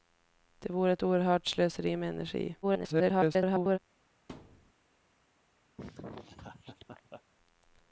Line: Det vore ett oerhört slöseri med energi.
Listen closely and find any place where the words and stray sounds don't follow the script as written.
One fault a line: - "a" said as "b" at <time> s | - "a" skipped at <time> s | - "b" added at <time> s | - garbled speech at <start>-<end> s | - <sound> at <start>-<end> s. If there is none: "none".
- garbled speech at 2.6-3.8 s
- thud at 4.3-4.7 s
- laugh at 5.8-7.2 s